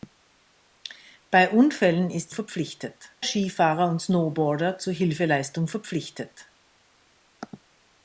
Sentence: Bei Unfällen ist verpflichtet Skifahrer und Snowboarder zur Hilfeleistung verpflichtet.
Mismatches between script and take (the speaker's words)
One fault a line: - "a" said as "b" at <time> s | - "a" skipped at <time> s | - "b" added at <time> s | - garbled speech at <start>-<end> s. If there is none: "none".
none